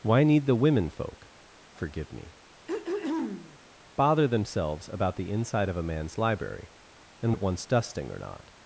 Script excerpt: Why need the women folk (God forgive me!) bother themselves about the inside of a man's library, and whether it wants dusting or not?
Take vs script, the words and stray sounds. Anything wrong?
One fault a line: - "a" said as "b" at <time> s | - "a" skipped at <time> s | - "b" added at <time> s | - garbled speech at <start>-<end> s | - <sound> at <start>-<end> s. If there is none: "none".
- "God" skipped at 1.3 s
- throat clearing at 2.7-3.6 s
- "whether" skipped at 7.3 s